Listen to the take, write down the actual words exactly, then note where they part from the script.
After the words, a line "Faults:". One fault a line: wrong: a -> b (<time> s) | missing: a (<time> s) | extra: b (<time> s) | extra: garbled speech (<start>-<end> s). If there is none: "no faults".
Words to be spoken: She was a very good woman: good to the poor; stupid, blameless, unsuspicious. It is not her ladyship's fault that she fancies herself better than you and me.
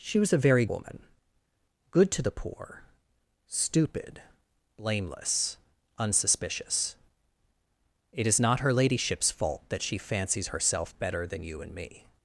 She was a very woman: good to the poor; stupid, blameless, unsuspicious. It is not her ladyship's fault that she fancies herself better than you and me.
Faults:
missing: good (0.7 s)